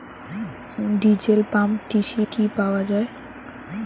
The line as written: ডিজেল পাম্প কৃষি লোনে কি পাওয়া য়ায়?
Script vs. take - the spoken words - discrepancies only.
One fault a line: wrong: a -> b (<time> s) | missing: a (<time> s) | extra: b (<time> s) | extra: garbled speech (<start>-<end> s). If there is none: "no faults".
missing: লোনে (2.2 s)